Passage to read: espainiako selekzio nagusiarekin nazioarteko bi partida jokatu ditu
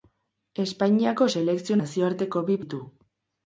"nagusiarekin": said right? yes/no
no